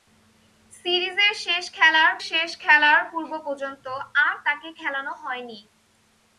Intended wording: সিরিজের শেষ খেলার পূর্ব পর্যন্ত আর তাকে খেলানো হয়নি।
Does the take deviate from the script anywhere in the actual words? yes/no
yes